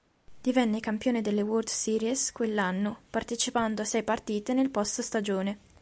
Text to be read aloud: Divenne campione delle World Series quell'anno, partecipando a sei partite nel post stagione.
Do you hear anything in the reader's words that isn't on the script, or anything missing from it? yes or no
no